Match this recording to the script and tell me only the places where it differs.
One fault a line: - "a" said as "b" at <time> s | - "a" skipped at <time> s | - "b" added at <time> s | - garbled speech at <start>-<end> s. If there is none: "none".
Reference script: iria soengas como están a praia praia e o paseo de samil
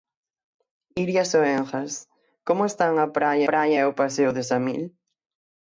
none